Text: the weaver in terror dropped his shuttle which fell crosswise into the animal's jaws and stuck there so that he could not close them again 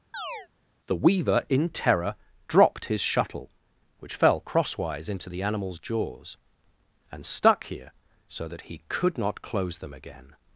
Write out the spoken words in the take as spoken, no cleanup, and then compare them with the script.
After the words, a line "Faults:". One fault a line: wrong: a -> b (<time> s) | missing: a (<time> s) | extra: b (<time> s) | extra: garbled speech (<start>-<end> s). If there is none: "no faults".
the weaver in terror dropped his shuttle which fell crosswise into the animal's jaws and stuck here so that he could not close them again
Faults:
wrong: there -> here (7.6 s)